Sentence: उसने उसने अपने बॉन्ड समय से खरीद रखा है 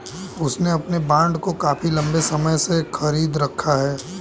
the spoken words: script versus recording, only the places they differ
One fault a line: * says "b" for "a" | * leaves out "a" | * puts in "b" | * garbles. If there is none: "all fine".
* leaves out "उसने"
* puts in "को काफी लंबे"